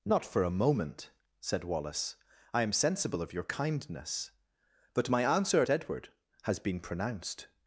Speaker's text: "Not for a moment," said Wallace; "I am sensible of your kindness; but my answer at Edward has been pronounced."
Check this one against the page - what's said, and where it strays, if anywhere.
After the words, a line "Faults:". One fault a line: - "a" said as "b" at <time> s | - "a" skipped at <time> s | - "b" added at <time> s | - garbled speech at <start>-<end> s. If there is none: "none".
"Not for a moment," said Wallace; "I am sensible of your kindness; but my answer at Edward has been pronounced."
Faults:
none